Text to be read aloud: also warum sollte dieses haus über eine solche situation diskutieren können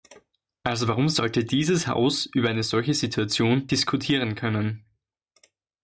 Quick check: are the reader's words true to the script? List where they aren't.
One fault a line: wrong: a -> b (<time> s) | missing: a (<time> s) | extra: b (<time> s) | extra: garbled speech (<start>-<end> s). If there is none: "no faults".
no faults